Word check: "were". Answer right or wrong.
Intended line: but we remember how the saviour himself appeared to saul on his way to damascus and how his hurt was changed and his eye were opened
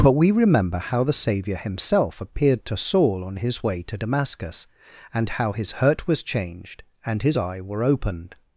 right